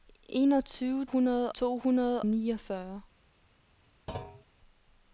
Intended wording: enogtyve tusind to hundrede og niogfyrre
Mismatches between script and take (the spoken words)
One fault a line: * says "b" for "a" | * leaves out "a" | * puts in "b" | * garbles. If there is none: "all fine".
* says "hundrede" for "tusind"
* leaves out "og"